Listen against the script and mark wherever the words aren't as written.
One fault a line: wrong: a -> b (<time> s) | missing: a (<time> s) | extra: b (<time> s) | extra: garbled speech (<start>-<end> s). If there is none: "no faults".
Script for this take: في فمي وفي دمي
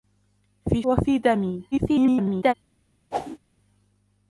missing: فمي (0.8 s)
extra: garbled speech (1.7-2.5 s)